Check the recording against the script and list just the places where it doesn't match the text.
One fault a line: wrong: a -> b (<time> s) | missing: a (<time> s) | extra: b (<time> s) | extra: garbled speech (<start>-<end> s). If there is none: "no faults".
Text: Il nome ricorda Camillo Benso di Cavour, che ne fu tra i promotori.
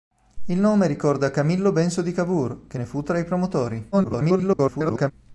extra: garbled speech (3.9-5.1 s)